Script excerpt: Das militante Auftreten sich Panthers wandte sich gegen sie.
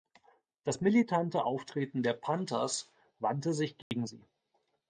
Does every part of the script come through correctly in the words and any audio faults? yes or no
no